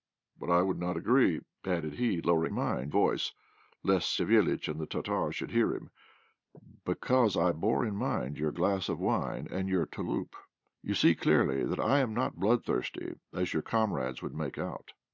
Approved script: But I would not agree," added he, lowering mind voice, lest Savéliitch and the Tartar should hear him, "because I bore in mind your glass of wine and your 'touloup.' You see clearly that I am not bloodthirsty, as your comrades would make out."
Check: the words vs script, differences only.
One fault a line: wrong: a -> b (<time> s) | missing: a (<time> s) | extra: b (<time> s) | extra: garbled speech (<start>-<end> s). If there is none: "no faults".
no faults